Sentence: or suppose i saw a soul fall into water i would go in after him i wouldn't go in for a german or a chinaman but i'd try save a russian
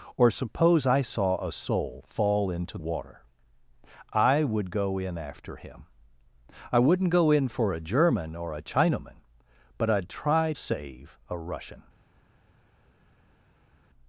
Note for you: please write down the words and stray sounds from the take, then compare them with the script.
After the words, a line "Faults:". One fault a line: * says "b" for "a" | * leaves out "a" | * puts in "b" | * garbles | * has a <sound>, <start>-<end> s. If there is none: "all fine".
or suppose i saw a soul fall into water i would go in after him i wouldn't go in for a german or a chinaman but i'd try save a russian
Faults:
all fine